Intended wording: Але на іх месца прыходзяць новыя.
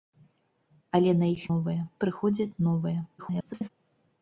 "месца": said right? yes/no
no